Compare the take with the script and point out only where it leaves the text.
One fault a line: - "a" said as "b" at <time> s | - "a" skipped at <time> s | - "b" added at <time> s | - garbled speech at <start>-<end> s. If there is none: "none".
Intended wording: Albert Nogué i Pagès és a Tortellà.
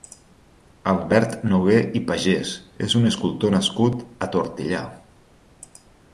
- "un escultor nascut" added at 3.0 s